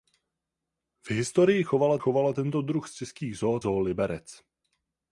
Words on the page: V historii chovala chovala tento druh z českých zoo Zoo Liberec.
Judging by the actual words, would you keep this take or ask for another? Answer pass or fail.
pass